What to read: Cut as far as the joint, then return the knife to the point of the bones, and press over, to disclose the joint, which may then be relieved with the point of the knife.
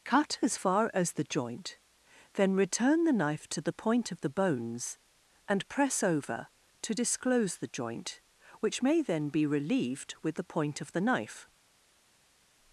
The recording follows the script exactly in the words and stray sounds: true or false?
true